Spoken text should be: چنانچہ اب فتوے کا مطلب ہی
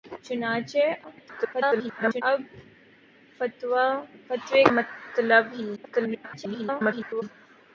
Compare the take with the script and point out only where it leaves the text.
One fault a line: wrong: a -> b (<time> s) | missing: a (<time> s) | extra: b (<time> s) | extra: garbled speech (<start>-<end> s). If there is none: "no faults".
extra: garbled speech (1.0-2.2 s)
missing: کا (4.6 s)
extra: garbled speech (5.8-7.2 s)